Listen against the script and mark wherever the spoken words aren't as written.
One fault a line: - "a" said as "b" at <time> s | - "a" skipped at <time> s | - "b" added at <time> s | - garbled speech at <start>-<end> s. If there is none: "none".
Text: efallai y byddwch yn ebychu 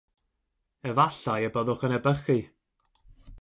none